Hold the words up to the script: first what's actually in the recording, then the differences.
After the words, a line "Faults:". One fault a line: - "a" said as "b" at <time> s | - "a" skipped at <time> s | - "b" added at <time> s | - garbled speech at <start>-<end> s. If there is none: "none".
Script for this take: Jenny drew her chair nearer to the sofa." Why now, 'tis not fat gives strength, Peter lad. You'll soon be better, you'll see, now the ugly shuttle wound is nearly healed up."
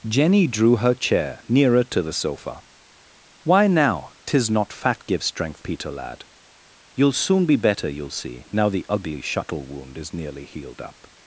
Jenny drew her chair nearer to the sofa." Why now, 'tis not fat gives strength, Peter lad. You'll soon be better, you'll see, now the ugly shuttle wound is nearly healed up."
Faults:
none